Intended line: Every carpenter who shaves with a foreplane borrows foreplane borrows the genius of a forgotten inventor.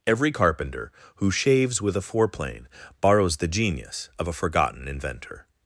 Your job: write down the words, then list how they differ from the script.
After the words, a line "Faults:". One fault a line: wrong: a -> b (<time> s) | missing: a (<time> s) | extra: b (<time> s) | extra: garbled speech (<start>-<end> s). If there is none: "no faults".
Every carpenter who shaves with a foreplane borrows the genius of a forgotten inventor.
Faults:
missing: foreplane borrows (3.4 s)